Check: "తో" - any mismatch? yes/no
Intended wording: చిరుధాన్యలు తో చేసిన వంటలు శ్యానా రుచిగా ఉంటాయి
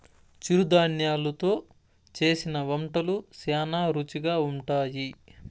no